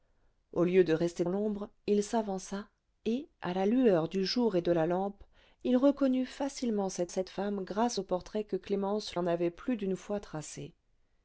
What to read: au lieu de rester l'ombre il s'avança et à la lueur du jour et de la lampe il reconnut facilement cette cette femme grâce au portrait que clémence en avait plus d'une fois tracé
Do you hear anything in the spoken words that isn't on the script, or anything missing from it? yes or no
no